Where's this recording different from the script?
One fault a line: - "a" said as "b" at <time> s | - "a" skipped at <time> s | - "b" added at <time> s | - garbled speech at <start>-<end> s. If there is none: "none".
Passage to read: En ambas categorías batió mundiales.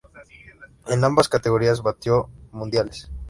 none